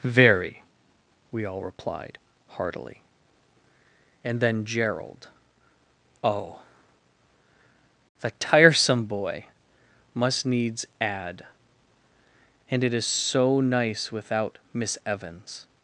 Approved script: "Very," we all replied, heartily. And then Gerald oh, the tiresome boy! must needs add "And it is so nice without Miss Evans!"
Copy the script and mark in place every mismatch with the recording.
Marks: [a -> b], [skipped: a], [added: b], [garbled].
"Very," we all replied, heartily. And then Gerald oh, the tiresome boy! must needs add "And it is so nice without Miss Evans!"